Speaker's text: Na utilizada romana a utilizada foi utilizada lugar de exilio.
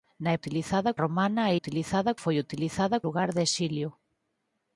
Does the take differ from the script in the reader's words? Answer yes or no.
no